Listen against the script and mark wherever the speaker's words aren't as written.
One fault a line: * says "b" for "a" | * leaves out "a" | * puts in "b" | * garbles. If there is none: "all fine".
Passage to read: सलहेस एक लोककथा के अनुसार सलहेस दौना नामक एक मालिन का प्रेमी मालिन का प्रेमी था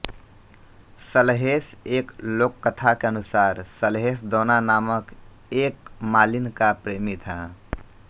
* leaves out "मालिन का प्रेमी"